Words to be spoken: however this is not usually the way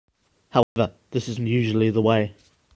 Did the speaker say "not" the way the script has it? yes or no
no